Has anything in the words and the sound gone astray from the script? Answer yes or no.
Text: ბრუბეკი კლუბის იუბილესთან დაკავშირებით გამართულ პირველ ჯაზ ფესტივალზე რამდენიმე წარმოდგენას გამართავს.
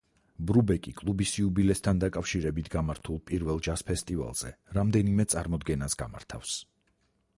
no